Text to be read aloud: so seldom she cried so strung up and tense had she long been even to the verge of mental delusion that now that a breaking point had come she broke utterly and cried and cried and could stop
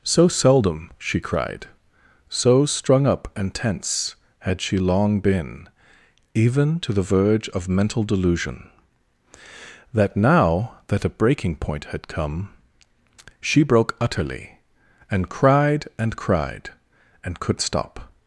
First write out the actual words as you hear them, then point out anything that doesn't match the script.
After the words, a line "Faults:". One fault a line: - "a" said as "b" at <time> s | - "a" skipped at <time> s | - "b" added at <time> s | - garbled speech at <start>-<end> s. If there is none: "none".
so seldom she cried so strung up and tense had she long been even to the verge of mental delusion that now that a breaking point had come she broke utterly and cried and cried and could stop
Faults:
none